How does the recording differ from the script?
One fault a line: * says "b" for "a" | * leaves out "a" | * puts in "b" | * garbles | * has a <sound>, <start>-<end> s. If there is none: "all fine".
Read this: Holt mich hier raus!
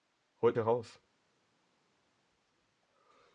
* leaves out "mich"